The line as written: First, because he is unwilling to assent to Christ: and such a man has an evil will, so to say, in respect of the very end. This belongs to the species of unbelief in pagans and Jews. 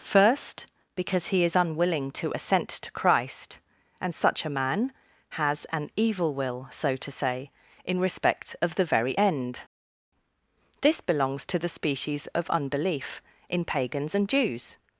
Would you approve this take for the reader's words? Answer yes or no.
yes